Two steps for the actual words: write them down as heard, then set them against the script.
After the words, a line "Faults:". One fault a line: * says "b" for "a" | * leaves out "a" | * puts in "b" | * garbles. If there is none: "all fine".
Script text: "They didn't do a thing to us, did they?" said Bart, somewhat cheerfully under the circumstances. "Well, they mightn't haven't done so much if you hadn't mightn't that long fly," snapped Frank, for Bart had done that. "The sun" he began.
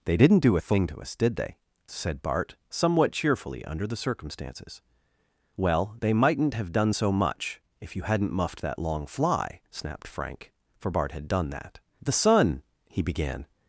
"They didn't do a thing to us, did they?" said Bart, somewhat cheerfully under the circumstances. "Well, they mightn't have done so much if you hadn't muffed that long fly," snapped Frank, for Bart had done that. "The sun" he began.
Faults:
* says "have" for "haven't"
* says "muffed" for "mightn't"